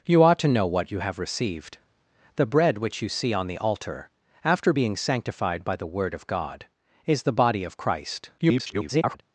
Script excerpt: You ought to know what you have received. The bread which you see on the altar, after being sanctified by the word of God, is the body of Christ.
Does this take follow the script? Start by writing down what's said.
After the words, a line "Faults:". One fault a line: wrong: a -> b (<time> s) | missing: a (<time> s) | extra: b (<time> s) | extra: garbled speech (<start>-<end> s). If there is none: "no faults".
You ought to know what you have received. The bread which you see on the altar, after being sanctified by the word of God, is the body of Christ. [garbled]
Faults:
extra: garbled speech (8.4-9.2 s)